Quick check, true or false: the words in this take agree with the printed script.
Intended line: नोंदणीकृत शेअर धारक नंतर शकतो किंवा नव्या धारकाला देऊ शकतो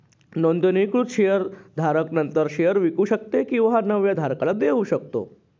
false